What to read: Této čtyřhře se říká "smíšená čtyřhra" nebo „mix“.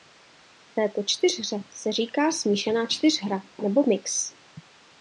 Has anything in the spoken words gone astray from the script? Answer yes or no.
no